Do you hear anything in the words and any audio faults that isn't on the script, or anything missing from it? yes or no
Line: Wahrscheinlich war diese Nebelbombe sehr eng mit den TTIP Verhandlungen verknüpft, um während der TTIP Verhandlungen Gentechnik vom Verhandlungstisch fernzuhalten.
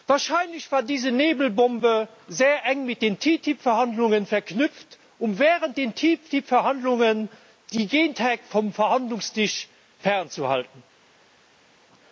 yes